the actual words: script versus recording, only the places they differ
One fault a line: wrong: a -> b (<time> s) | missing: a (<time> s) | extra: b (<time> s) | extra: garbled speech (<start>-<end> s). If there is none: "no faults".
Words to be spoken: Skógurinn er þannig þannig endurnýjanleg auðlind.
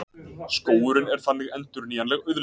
missing: þannig (1.5 s)